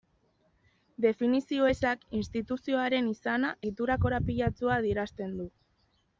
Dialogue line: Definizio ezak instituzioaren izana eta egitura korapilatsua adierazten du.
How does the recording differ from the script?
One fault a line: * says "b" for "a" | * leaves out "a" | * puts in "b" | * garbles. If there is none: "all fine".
* leaves out "eta"